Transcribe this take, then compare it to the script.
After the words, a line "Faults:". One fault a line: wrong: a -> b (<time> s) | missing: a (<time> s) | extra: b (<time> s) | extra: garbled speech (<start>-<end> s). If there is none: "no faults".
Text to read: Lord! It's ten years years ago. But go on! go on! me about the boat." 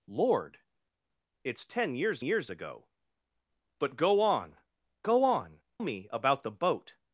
Lord! It's ten years years ago. But go on! go on! me about the boat."
Faults:
no faults